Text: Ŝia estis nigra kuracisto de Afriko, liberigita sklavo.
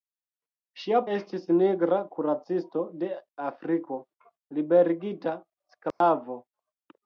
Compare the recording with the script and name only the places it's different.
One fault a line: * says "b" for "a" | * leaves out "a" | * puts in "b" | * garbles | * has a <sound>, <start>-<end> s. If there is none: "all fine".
* has a dropout, 5.9-6.0 s